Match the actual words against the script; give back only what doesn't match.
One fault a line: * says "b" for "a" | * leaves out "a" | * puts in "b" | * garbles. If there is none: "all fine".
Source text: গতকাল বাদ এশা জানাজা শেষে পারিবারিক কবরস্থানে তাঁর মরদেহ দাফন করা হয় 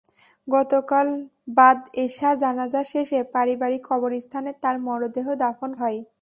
* leaves out "করা"